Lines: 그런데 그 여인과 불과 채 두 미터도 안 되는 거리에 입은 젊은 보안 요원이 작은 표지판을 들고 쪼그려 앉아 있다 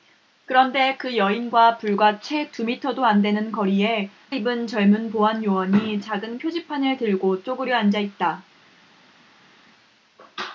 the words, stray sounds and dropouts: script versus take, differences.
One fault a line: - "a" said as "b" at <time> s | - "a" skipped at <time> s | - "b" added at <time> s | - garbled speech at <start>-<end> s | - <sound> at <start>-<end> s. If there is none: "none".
none